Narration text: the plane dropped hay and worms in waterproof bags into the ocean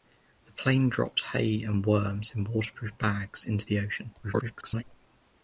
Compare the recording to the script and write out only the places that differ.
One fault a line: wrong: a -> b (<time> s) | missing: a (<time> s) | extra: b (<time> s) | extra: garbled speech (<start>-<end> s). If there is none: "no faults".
extra: garbled speech (4.2-4.8 s)